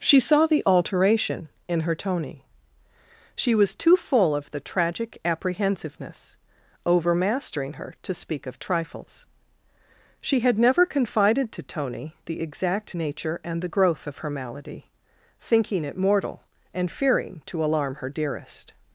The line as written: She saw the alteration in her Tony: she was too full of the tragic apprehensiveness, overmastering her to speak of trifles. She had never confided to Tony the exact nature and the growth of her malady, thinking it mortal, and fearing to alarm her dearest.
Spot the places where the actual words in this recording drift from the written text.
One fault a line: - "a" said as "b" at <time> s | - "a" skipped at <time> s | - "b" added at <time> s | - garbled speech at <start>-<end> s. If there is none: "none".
none